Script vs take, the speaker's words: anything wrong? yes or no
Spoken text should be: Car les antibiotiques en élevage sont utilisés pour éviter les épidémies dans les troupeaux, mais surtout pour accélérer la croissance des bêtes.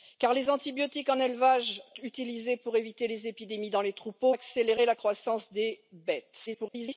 yes